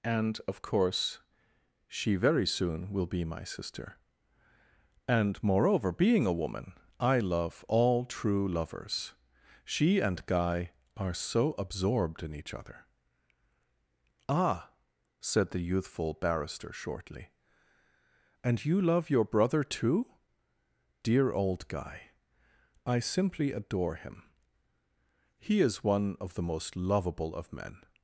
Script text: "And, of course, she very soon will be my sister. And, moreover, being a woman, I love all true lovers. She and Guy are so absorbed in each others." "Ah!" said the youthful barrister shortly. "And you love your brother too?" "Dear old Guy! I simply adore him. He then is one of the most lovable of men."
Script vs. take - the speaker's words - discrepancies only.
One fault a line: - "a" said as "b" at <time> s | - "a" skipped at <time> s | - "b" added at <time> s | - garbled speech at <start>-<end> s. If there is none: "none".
- "others" said as "other" at 12.5 s
- "then" skipped at 25.6 s